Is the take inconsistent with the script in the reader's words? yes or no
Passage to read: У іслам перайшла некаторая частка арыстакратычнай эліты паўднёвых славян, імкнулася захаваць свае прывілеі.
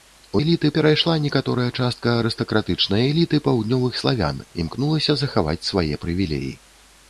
yes